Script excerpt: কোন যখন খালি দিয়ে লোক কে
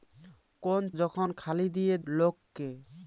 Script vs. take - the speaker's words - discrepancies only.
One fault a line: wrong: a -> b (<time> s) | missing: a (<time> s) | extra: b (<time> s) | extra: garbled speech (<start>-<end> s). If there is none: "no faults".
no faults